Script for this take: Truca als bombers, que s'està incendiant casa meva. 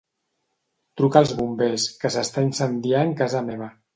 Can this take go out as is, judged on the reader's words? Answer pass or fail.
pass